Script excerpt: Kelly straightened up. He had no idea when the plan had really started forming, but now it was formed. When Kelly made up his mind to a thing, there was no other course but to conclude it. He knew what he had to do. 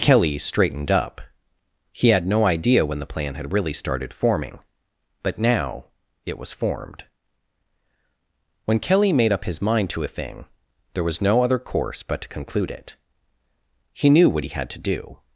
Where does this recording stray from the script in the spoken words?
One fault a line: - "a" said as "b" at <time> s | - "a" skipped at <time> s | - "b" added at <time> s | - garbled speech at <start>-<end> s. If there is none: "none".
none